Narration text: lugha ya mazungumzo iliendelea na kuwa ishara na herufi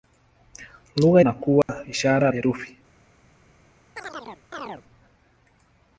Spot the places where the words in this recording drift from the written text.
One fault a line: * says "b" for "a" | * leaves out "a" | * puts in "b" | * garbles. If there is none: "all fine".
* leaves out "ya mazungumzo iliendelea"
* leaves out "na"